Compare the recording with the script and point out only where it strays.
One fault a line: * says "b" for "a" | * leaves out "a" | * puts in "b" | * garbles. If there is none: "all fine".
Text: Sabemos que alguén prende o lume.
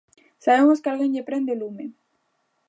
* puts in "lle"